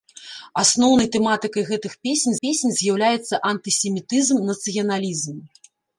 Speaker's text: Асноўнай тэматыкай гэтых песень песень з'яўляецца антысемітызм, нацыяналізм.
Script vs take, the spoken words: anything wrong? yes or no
no